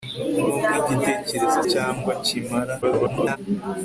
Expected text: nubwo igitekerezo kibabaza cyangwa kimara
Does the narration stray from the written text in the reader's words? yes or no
yes